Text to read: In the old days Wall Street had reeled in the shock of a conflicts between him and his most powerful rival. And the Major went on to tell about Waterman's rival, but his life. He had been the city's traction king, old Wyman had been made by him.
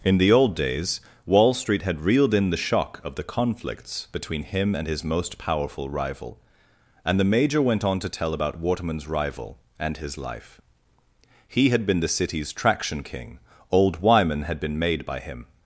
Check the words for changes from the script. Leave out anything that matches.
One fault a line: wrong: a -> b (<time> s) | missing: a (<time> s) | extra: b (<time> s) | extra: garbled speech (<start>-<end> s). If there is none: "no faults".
wrong: a -> the (3.1 s)
wrong: but -> and (9.8 s)